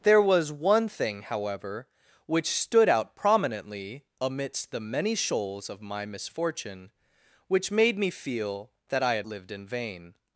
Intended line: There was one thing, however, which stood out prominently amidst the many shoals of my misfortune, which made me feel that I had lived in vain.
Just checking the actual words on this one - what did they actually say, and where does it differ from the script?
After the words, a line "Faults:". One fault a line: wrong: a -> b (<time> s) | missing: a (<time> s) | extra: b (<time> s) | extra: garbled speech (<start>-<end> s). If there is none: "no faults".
There was one thing, however, which stood out prominently amidst the many shoals of my misfortune, which made me feel that I had lived in vain.
Faults:
no faults